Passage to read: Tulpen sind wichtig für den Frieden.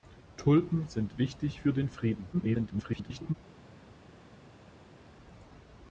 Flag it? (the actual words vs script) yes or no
yes